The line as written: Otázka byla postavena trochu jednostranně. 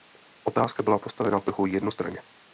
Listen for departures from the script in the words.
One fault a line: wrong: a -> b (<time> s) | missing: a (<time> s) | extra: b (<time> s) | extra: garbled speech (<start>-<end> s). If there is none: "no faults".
no faults